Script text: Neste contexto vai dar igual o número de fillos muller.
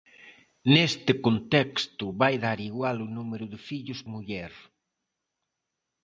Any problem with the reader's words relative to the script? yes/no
no